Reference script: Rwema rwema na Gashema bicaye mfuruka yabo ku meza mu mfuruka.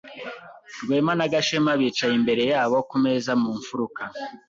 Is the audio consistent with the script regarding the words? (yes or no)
no